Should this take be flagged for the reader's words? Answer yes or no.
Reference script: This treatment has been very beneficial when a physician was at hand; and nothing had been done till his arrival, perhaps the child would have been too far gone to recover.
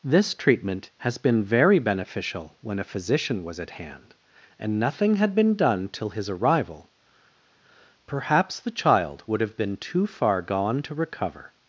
no